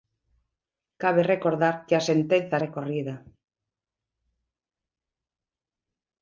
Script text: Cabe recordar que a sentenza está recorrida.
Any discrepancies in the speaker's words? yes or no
yes